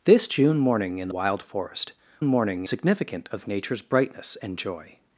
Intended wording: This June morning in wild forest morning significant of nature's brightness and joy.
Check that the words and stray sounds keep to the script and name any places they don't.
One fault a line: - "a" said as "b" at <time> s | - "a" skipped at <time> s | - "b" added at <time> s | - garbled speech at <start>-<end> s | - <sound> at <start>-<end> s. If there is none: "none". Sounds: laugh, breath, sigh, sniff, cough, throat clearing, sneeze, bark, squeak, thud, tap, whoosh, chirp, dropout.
none